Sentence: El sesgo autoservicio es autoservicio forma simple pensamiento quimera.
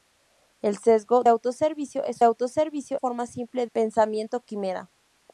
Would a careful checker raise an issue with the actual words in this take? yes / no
no